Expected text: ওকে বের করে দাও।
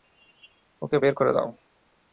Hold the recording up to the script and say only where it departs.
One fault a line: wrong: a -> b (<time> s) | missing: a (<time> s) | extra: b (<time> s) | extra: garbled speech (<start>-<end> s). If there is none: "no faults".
no faults